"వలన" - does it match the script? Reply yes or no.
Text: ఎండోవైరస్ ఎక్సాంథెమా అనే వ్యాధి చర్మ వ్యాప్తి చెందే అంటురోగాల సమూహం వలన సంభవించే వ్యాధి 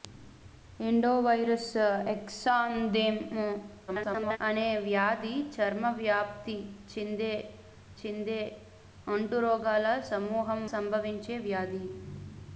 no